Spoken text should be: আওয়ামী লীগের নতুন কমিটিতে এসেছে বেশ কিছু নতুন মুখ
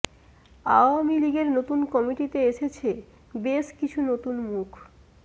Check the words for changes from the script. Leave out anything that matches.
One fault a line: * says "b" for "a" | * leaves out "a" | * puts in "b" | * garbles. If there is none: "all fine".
all fine